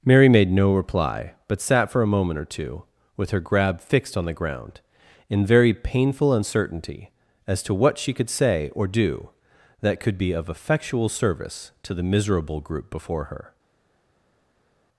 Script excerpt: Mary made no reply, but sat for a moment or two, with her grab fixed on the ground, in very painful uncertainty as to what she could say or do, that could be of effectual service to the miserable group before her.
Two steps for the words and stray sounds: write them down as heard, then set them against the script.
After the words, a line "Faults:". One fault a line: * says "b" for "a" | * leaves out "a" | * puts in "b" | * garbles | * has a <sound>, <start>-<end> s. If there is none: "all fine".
Mary made no reply, but sat for a moment or two, with her grab fixed on the ground, in very painful uncertainty as to what she could say or do, that could be of effectual service to the miserable group before her.
Faults:
all fine